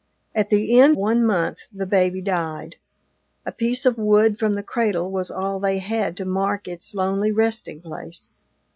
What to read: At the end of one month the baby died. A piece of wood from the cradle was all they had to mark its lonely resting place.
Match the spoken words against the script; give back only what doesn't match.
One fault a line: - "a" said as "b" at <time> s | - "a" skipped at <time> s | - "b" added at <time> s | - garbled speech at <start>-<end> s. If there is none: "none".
- "of" skipped at 1.0 s